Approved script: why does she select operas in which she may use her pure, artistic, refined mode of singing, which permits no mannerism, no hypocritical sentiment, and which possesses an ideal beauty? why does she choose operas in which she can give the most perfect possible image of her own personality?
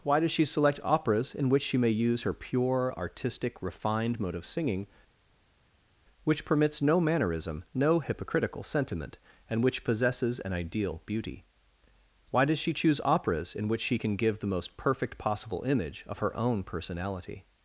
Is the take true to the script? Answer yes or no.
yes